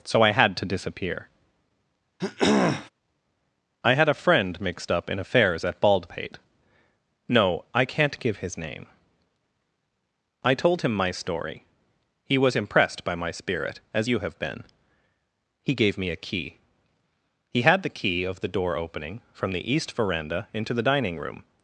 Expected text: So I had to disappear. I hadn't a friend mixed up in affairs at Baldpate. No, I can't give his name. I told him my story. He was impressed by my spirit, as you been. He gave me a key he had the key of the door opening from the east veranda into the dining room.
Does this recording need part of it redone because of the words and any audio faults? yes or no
yes